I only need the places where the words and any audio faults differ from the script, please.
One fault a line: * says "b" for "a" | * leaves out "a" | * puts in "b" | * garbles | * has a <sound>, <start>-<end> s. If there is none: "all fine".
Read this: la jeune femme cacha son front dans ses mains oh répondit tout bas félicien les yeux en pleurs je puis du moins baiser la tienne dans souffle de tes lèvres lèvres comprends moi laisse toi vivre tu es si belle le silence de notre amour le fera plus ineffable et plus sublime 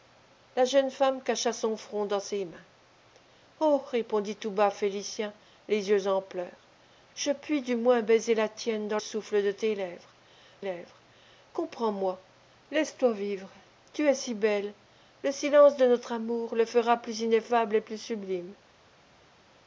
all fine